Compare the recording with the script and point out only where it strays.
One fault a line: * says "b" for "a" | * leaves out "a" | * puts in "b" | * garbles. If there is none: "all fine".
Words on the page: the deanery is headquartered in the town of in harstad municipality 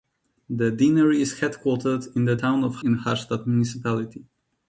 all fine